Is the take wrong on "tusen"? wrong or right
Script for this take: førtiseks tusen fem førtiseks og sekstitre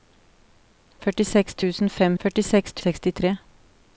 right